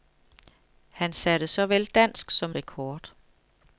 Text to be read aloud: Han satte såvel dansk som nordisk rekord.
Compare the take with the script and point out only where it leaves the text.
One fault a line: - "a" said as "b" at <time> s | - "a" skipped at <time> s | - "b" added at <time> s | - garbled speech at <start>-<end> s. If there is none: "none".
- "nordisk" skipped at 2.5 s